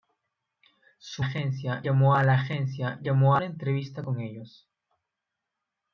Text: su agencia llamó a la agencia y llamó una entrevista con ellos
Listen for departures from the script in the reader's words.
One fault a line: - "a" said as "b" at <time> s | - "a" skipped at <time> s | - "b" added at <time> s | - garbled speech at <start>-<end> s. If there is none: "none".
none